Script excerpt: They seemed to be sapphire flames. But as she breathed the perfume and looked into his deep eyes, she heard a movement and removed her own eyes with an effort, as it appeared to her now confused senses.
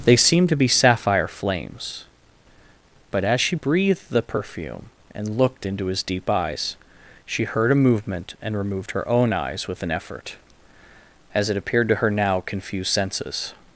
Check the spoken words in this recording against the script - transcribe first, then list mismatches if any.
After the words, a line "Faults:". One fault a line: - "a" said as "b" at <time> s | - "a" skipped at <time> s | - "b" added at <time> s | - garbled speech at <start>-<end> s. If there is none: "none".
They seemed to be sapphire flames. But as she breathed the perfume and looked into his deep eyes, she heard a movement and removed her own eyes with an effort, as it appeared to her now confused senses.
Faults:
none